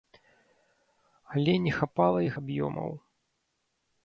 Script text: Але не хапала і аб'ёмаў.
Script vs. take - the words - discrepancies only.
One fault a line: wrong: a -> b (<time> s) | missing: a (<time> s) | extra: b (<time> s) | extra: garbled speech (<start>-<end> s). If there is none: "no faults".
no faults